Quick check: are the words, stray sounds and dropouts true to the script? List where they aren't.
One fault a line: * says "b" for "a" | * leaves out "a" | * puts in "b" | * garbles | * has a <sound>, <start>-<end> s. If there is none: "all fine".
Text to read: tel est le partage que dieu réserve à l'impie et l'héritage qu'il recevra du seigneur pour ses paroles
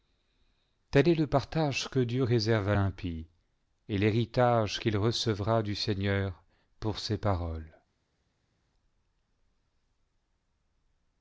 all fine